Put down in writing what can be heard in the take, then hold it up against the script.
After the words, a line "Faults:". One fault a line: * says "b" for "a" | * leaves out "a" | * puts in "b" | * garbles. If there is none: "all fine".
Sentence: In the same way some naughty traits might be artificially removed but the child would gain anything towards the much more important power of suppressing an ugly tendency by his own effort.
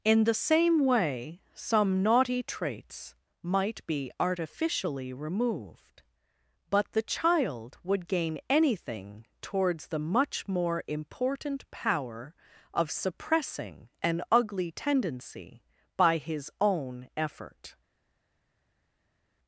In the same way some naughty traits might be artificially removed but the child would gain anything towards the much more important power of suppressing an ugly tendency by his own effort.
Faults:
all fine